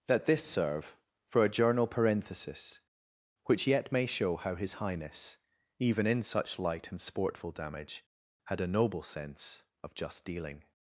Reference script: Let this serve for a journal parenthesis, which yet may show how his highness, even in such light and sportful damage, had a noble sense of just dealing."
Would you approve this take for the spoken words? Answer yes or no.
yes